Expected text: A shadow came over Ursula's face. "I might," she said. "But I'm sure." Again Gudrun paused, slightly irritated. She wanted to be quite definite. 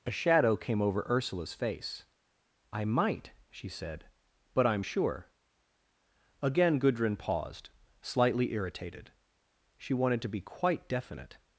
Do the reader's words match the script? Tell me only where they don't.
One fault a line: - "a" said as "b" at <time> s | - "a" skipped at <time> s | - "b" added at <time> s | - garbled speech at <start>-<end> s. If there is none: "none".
none